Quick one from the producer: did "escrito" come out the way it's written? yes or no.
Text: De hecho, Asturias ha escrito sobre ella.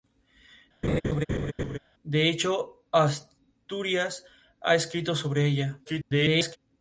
yes